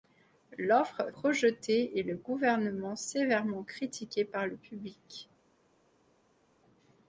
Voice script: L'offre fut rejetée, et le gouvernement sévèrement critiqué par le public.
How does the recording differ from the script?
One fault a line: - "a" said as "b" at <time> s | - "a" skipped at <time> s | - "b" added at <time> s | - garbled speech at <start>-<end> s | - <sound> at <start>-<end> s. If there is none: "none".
- "fut" skipped at 1.1 s